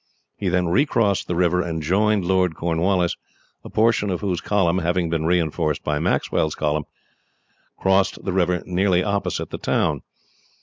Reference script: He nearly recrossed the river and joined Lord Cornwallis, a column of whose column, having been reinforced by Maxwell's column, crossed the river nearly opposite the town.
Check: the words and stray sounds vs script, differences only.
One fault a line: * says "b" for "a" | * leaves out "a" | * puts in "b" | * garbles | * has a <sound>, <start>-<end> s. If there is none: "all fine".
* says "then" for "nearly"
* says "portion" for "column"